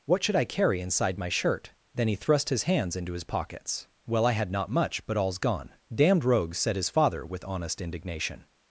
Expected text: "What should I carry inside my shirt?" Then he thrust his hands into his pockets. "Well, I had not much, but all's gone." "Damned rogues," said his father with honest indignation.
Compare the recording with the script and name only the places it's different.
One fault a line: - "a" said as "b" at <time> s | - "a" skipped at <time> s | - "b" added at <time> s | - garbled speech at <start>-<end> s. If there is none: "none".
none